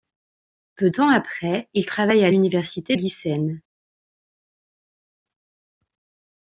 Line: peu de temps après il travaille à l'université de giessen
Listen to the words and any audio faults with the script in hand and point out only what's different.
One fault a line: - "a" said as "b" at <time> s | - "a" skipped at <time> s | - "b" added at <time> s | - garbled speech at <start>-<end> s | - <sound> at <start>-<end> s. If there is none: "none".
- "de" skipped at 0.9 s
- "de" skipped at 3.0 s